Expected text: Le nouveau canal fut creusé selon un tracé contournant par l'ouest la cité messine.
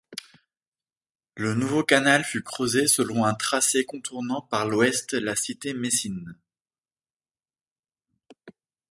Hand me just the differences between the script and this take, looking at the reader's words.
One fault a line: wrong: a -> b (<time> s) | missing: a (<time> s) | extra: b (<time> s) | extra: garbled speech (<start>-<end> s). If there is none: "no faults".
no faults